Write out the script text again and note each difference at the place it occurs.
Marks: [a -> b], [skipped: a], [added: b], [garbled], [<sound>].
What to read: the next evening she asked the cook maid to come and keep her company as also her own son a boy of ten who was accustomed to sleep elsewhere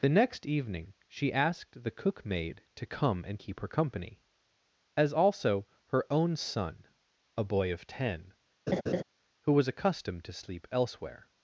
the next evening she asked the cook maid to come and keep her company as also her own son a boy of ten [laugh] who was accustomed to sleep elsewhere